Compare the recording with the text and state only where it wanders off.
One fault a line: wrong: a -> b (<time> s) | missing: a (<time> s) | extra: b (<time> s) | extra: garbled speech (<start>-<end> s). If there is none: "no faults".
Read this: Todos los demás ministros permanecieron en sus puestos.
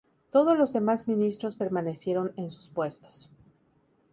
no faults